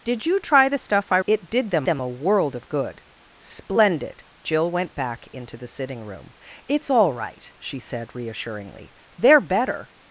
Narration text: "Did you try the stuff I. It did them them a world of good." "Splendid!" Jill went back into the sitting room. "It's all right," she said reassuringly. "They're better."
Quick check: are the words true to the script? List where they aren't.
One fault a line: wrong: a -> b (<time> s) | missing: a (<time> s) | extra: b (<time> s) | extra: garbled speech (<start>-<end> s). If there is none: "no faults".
no faults